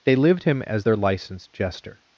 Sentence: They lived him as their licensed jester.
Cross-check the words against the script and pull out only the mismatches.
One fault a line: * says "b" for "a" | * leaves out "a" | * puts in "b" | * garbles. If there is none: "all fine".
all fine